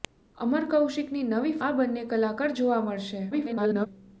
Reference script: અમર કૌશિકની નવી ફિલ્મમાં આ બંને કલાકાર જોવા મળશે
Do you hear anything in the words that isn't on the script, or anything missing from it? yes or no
yes